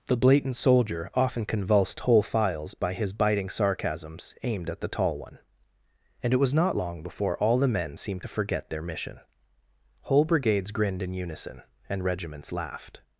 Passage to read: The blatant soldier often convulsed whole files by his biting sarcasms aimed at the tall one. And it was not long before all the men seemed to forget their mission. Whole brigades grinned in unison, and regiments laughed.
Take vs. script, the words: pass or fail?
pass